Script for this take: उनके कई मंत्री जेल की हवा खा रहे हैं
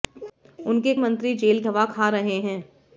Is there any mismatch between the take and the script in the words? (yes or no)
yes